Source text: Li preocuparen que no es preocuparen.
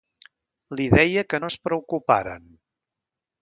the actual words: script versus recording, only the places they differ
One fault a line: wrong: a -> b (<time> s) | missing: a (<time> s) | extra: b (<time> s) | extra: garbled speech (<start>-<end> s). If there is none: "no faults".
wrong: preocuparen -> deia (0.9 s)